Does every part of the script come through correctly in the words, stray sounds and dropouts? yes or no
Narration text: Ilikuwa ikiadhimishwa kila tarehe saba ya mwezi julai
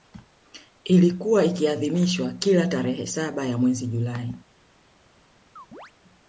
no